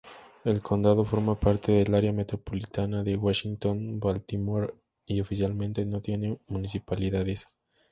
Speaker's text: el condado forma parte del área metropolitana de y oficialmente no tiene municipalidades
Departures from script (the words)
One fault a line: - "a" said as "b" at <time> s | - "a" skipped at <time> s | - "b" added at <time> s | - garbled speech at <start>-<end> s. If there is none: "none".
- "washington baltimore" added at 3.2 s